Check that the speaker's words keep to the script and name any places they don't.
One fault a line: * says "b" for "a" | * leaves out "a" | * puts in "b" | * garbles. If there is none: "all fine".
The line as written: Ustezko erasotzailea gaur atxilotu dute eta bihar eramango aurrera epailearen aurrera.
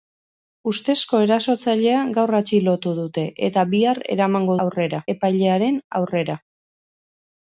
all fine